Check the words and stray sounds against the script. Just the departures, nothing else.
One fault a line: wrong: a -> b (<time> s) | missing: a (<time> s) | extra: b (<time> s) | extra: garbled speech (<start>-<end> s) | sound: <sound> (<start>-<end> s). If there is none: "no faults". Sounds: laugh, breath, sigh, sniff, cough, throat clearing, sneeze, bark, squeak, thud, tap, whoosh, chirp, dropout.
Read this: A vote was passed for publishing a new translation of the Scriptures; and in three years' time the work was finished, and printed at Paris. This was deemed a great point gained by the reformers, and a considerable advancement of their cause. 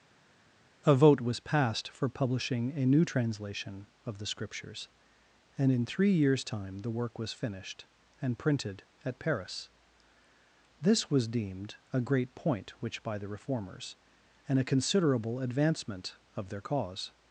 wrong: gained -> which (12.8 s)